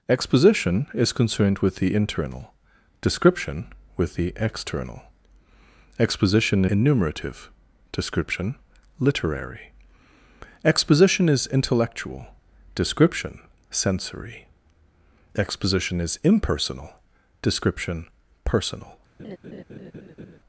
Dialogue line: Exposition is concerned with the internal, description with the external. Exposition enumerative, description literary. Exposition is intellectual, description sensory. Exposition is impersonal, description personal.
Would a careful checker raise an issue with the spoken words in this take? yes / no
no